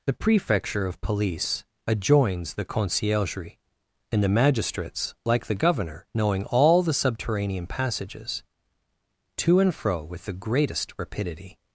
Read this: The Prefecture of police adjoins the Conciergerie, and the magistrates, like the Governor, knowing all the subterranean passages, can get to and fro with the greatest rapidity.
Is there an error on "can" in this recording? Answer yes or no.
yes